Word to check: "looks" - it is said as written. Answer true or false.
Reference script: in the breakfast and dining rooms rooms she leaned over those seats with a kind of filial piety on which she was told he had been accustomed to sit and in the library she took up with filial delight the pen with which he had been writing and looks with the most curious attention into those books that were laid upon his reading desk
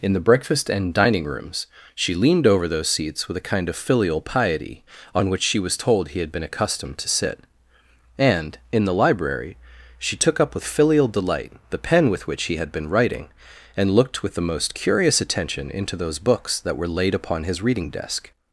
false